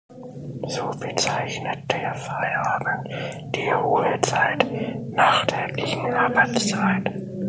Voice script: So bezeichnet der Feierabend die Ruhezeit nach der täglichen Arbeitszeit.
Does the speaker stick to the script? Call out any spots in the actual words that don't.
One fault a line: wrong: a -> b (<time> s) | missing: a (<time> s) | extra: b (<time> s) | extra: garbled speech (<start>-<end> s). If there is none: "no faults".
missing: der (5.5 s)